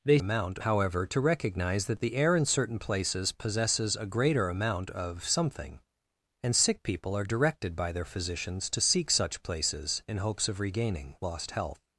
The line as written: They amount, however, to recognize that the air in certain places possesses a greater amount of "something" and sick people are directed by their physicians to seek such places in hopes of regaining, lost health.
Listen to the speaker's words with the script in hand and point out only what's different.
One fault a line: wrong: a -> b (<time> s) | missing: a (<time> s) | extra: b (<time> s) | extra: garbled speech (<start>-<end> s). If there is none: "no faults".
no faults